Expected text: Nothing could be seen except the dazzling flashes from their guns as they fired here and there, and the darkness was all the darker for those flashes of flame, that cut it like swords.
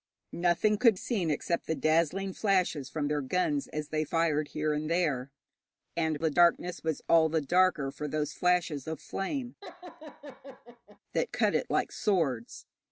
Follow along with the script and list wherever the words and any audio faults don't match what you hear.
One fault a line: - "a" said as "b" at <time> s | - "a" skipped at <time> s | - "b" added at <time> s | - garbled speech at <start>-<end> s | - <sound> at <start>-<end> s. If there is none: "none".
- "be" skipped at 1.0 s
- laugh at 9.6-11.0 s